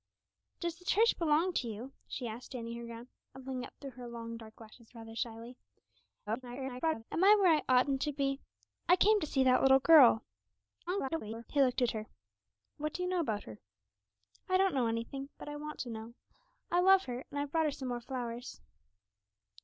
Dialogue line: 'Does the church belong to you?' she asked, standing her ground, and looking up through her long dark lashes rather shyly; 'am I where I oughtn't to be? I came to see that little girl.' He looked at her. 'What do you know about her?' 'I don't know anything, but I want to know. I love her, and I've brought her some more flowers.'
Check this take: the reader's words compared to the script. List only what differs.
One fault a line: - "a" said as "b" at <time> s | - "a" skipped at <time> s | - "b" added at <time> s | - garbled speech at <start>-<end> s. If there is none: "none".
- garbled speech at 6.3-7.0 s
- garbled speech at 10.9-11.5 s